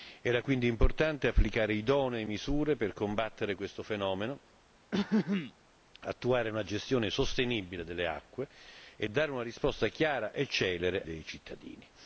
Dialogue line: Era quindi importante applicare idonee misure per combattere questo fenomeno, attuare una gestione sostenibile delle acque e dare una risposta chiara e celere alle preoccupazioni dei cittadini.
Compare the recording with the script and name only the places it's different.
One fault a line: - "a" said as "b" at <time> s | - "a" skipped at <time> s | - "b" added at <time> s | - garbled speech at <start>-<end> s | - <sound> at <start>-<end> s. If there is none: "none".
- throat clearing at 4.9-5.5 s
- "alle preoccupazioni" skipped at 11.0 s